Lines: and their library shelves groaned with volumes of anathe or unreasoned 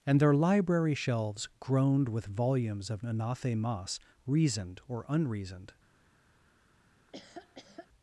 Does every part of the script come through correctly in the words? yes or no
no